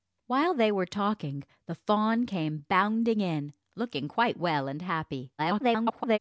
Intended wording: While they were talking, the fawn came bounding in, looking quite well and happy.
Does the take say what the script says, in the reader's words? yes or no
no